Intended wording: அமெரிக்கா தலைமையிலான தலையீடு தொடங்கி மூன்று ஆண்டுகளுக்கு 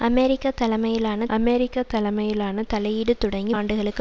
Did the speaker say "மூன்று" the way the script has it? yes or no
no